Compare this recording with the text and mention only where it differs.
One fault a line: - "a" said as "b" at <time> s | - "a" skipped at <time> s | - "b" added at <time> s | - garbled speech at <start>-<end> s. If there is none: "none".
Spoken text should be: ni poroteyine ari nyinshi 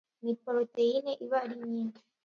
- "iba" added at 1.2 s